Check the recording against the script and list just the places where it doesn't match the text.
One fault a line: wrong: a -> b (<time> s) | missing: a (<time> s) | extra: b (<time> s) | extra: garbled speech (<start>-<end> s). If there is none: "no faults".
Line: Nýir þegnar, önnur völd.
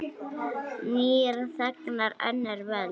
no faults